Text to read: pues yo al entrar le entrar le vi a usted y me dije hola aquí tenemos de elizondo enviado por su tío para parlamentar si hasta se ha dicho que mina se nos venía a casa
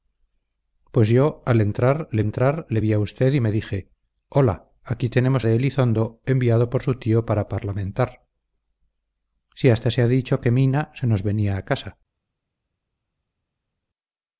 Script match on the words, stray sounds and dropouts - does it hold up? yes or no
yes